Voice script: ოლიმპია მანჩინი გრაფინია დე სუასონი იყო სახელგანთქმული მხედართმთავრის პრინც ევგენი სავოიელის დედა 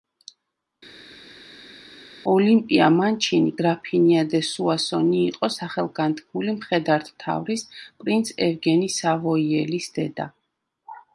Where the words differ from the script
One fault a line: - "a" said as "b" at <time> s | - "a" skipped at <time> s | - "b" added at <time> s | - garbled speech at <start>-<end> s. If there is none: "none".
none